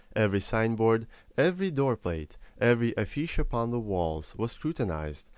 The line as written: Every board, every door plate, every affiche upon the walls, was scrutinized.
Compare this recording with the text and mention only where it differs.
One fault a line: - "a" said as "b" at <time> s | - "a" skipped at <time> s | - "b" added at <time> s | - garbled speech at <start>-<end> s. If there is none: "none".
- "sign" added at 0.4 s